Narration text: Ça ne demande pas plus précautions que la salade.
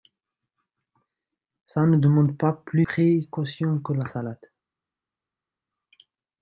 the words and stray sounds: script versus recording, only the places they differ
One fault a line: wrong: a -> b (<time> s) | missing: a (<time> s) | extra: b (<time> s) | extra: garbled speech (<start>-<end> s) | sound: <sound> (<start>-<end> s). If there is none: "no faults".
no faults